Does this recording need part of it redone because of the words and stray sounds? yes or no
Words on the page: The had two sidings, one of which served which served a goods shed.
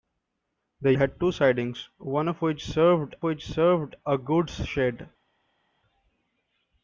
no